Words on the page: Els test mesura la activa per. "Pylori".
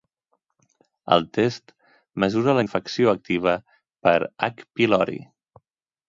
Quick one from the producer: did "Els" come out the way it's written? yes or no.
no